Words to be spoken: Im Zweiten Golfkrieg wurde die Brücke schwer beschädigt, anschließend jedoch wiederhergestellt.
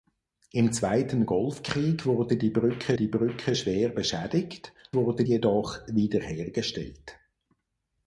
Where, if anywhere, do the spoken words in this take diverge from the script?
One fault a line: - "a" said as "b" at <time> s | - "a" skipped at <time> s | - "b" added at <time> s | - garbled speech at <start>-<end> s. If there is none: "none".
- "die Brücke" added at 2.9 s
- "anschließend" said as "wurde" at 5.0 s